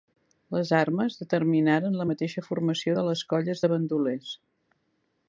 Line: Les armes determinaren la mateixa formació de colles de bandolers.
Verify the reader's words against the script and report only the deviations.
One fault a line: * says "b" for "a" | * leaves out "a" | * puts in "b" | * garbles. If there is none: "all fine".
* puts in "les"